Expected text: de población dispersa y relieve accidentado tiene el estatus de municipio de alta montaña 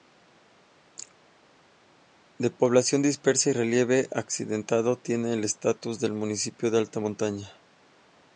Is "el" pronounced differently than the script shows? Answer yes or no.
no